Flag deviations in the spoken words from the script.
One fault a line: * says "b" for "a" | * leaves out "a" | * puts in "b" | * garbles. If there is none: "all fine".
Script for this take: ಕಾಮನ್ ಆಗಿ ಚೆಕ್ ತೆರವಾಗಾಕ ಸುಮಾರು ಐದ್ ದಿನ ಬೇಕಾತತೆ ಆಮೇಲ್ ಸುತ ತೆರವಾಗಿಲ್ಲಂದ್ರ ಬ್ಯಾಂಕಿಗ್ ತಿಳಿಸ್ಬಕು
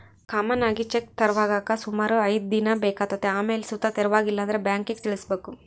all fine